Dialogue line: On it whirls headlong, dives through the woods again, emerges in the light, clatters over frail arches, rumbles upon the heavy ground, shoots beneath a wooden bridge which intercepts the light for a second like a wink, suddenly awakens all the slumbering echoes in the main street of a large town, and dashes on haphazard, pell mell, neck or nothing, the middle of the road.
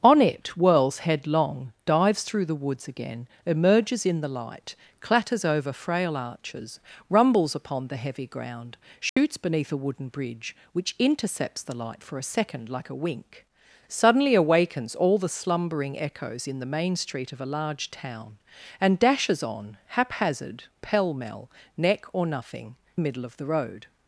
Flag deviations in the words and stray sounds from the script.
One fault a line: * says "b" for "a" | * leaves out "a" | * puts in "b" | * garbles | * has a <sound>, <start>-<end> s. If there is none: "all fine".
* has a dropout, 9.1-9.2 s